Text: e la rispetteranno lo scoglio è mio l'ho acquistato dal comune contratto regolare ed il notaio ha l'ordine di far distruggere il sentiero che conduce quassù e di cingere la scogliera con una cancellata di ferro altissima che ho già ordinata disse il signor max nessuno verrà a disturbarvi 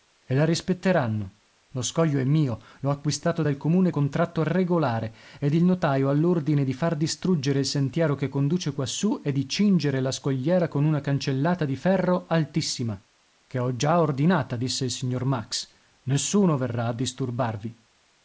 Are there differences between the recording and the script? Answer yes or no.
no